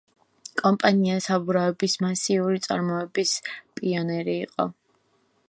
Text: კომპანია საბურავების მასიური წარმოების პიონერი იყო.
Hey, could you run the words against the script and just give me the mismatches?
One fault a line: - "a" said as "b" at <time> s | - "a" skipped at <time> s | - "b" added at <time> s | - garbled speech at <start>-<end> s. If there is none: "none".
none